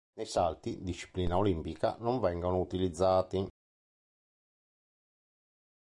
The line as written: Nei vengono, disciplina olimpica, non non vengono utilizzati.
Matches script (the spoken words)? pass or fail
fail